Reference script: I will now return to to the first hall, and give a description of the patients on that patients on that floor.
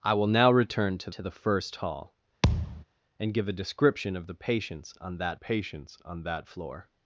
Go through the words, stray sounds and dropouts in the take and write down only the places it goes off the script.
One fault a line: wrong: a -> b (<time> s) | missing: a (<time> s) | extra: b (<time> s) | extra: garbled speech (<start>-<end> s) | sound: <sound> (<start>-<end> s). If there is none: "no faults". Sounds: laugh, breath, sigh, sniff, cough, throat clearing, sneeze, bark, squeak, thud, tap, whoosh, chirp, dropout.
sound: thud (2.4-2.8 s)